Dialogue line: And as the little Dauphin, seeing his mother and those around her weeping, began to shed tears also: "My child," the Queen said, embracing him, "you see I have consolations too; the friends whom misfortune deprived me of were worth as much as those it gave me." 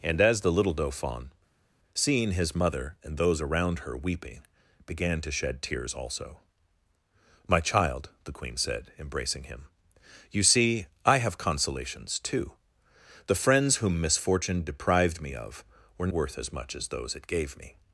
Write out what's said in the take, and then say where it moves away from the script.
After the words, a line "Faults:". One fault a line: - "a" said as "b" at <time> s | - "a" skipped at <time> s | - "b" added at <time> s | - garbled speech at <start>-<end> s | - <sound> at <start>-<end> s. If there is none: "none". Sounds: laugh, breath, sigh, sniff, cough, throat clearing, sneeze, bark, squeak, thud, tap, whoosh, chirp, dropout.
And as the little Dauphin, seeing his mother and those around her weeping, began to shed tears also: "My child," the Queen said, embracing him, "you see I have consolations too; the friends whom misfortune deprived me of were worth as much as those it gave me."
Faults:
none